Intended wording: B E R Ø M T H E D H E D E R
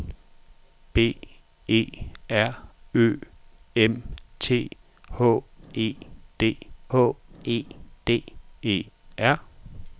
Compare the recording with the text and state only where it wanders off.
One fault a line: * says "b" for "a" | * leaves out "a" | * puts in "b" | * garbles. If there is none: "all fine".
all fine